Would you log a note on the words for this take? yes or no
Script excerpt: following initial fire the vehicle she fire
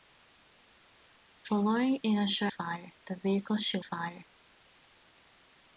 no